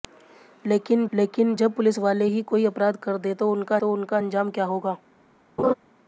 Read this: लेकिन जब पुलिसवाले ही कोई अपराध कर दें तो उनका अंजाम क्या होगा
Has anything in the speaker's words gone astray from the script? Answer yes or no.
yes